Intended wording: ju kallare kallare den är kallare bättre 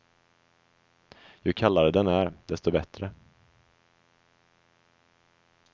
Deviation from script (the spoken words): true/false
true